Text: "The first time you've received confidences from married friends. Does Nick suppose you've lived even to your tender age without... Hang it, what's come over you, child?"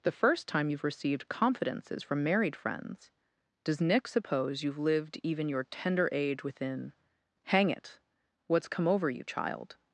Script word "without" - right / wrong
wrong